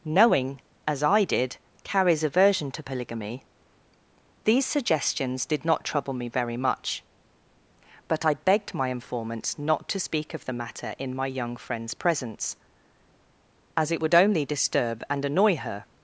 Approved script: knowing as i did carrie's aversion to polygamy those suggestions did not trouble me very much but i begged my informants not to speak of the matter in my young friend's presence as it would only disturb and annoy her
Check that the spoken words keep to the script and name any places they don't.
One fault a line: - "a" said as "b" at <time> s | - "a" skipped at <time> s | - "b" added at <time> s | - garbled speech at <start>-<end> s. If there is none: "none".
- "those" said as "these" at 4.4 s